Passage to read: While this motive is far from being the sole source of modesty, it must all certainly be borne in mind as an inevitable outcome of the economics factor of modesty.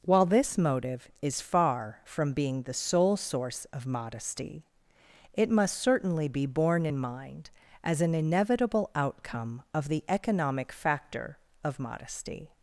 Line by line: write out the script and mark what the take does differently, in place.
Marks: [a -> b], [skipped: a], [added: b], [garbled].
While this motive is far from being the sole source of modesty, it must [skipped: all] certainly be borne in mind as an inevitable outcome of the [economics -> economic] factor of modesty.